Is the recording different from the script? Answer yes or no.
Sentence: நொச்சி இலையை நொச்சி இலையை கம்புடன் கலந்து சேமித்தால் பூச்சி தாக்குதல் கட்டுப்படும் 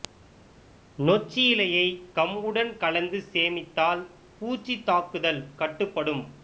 yes